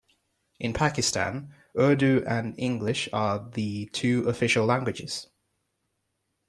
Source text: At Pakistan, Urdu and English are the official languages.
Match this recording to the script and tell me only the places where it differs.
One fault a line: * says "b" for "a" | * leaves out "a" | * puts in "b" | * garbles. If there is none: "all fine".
* says "In" for "At"
* puts in "two"